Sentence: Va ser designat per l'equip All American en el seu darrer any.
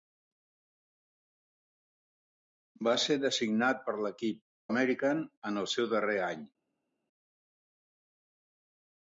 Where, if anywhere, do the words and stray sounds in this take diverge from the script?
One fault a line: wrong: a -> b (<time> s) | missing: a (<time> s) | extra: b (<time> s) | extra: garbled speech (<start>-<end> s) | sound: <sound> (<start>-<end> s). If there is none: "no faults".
missing: All (4.4 s)